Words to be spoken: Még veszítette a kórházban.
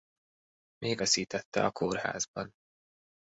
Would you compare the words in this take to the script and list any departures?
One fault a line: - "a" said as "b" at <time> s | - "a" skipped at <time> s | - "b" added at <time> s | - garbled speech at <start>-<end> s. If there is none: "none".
none